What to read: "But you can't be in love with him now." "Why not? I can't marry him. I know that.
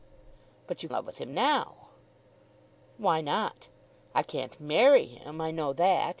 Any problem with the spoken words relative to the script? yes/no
yes